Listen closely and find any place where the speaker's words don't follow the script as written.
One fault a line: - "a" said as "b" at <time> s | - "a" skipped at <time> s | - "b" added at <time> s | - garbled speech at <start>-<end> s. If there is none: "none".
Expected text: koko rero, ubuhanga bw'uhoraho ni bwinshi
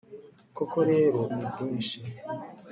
- "ubuhanga bw'uhoraho" skipped at 1.2 s